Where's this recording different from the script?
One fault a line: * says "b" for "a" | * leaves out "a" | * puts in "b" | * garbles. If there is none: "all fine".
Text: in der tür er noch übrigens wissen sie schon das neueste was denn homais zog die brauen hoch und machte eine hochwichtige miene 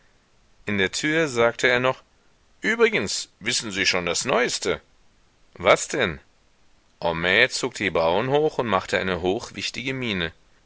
* puts in "sagte"